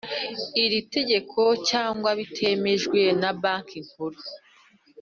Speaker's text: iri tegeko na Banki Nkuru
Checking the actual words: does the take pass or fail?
fail